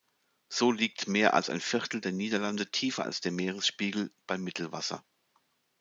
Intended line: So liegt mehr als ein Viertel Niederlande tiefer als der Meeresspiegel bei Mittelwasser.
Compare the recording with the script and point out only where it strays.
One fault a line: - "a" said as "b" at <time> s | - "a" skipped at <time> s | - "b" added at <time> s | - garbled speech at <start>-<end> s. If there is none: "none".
- "der" added at 2.0 s